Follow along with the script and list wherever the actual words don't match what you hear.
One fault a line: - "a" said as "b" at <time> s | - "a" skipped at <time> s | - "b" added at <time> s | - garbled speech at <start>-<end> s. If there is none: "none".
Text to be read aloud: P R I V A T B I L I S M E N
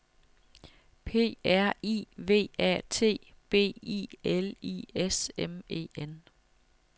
none